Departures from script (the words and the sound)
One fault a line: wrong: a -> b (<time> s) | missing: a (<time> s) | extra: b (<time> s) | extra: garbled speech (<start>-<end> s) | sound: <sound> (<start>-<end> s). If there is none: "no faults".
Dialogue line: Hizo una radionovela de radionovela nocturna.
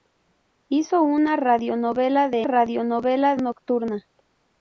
no faults